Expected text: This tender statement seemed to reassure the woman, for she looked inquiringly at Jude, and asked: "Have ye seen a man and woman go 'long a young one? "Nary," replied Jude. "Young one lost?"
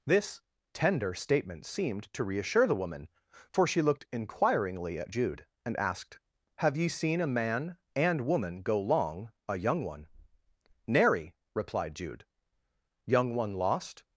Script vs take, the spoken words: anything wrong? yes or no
no